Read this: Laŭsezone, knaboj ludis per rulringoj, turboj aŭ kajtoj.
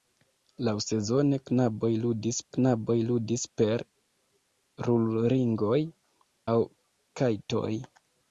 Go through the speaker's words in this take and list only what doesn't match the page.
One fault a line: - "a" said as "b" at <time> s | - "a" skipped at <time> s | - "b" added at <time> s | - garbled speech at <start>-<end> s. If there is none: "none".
- "knaboj ludis" added at 2.6 s
- "turboj" skipped at 5.8 s